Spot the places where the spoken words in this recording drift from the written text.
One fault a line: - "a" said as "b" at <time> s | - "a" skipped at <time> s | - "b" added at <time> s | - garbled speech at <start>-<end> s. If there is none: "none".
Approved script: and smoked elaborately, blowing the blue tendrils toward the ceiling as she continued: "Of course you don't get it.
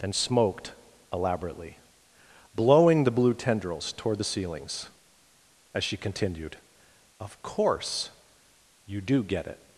- "ceiling" said as "ceilings" at 4.2 s
- "don't" said as "do" at 9.0 s